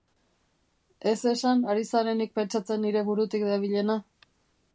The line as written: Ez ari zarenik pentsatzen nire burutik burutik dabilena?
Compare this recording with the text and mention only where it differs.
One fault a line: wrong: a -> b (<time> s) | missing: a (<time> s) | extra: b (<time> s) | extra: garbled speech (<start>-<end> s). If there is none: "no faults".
extra: esan (1.3 s)
missing: burutik (3.5 s)